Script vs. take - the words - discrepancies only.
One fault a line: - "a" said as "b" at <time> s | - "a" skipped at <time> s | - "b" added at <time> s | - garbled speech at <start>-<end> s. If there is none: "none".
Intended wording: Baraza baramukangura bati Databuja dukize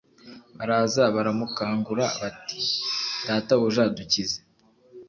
none